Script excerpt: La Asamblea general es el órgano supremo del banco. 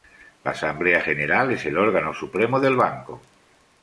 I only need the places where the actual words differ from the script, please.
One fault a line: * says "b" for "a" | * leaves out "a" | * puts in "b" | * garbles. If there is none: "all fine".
all fine